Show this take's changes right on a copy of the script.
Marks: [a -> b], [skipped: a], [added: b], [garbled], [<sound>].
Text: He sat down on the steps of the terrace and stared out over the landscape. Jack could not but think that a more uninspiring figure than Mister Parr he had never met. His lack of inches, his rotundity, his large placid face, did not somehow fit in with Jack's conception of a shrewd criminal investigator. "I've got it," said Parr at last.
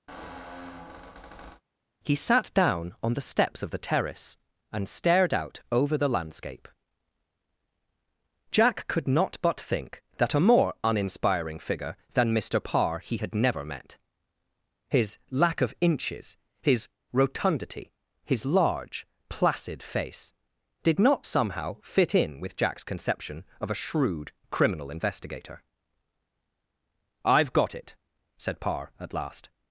[squeak] He sat down on the steps of the terrace and stared out over the landscape. Jack could not but think that a more uninspiring figure than Mister Parr he had never met. His lack of inches, his rotundity, his large placid face, did not somehow fit in with Jack's conception of a shrewd criminal investigator. "I've got it," said Parr at last.